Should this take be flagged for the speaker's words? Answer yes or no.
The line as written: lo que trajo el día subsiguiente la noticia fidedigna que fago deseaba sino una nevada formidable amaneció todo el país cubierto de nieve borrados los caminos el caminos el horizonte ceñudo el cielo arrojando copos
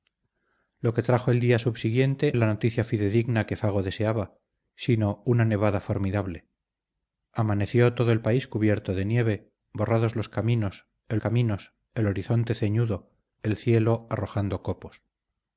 no